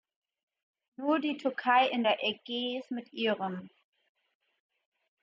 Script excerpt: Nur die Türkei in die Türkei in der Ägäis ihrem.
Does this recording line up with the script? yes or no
no